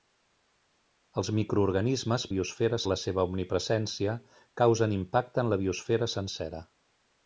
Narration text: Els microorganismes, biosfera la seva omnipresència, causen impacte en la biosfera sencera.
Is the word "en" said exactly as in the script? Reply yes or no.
yes